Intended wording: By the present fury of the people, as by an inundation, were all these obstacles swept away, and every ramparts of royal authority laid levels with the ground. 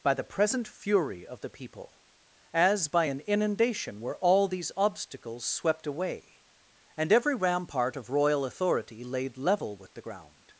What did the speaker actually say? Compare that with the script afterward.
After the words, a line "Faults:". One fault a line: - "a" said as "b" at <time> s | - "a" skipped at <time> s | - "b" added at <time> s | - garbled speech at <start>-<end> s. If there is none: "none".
By the present fury of the people, as by an inundation, were all these obstacles swept away, and every rampart of royal authority laid level with the ground.
Faults:
- "ramparts" said as "rampart" at 7.4 s
- "levels" said as "level" at 9.4 s